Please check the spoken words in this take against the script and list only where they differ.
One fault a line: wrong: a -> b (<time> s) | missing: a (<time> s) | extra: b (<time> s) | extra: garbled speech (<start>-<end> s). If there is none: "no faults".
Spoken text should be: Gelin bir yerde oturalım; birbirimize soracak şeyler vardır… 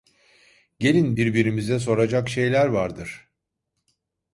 missing: bir yerde oturalım (1.1 s)